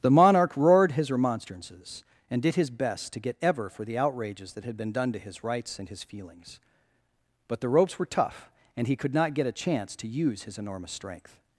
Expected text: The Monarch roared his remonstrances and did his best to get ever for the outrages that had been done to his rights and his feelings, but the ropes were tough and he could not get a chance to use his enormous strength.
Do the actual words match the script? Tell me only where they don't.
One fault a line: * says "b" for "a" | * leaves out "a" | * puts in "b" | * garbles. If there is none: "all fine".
all fine